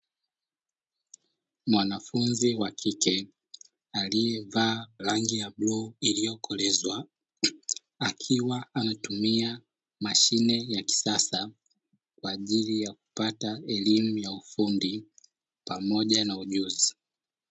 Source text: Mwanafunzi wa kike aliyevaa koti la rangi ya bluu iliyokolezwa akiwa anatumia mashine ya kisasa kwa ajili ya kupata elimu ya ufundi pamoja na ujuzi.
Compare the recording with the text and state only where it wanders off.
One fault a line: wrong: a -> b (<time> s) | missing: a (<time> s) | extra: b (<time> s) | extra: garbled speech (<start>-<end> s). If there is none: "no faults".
missing: koti la (4.9 s)